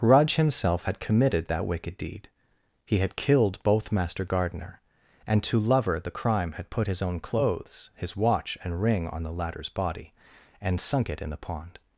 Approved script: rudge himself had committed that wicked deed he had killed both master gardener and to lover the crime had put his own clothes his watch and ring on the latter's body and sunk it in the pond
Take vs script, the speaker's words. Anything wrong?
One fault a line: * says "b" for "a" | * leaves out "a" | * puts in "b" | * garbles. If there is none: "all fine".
all fine